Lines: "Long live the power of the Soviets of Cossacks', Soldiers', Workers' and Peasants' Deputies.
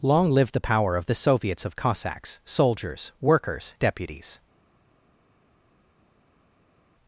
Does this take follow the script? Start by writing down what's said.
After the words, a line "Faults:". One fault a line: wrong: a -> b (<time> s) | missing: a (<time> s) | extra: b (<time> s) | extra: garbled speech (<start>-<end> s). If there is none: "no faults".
"Long live the power of the Soviets of Cossacks', Soldiers', Workers' Deputies.
Faults:
missing: and Peasants (3.8 s)